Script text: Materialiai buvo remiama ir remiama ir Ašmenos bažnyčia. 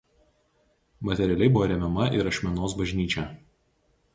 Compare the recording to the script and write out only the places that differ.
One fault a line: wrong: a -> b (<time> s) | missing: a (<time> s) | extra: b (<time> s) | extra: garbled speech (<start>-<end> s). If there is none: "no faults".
missing: remiama ir (2.3 s)